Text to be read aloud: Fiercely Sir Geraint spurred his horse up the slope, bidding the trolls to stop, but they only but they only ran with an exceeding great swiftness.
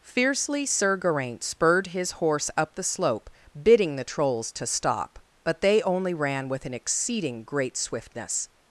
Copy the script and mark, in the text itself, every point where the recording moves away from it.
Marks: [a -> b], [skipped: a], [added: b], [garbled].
Fiercely Sir Geraint spurred his horse up the slope, bidding the trolls to stop, but they only [skipped: but they only] ran with an exceeding great swiftness.